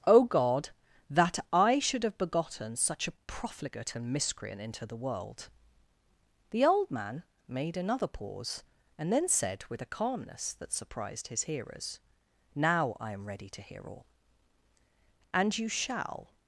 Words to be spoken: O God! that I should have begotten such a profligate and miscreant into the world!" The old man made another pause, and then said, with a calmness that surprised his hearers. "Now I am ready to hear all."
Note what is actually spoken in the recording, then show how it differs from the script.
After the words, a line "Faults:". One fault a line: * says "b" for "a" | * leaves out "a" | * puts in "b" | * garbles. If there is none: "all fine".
O God! that I should have begotten such a profligate and miscreant into the world!" The old man made another pause, and then said, with a calmness that surprised his hearers. "Now I am ready to hear all." "And you shall
Faults:
* puts in "And you shall"